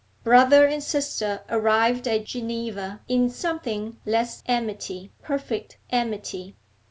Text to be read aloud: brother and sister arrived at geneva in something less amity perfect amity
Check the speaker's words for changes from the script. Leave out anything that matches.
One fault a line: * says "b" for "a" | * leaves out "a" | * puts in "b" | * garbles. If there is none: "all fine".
all fine